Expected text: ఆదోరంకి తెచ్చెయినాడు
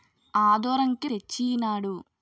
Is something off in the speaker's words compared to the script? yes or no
no